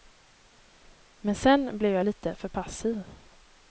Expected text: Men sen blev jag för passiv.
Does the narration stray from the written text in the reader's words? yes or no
yes